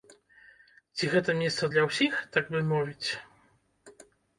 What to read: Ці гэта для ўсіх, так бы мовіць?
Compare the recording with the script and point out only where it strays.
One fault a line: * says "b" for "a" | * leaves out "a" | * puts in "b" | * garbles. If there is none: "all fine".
* puts in "месца"